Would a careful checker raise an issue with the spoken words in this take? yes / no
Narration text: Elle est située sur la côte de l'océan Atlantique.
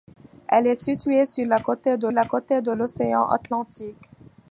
yes